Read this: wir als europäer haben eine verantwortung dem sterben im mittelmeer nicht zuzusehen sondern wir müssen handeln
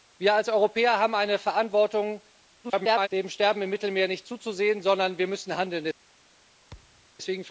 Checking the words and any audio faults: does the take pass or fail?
fail